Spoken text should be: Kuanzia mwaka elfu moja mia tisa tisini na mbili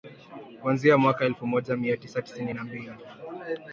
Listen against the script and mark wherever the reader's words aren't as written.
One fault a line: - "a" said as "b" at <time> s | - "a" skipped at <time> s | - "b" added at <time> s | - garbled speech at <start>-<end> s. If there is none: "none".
none